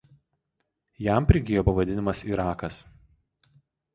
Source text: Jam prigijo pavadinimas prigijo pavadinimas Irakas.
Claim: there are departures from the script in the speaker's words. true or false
true